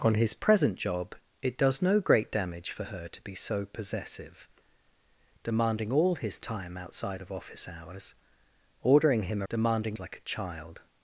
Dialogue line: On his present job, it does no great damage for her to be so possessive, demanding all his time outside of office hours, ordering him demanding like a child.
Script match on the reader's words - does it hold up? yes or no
yes